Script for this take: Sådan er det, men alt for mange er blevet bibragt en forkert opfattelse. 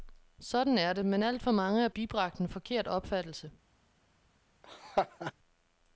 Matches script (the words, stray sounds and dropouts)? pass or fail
fail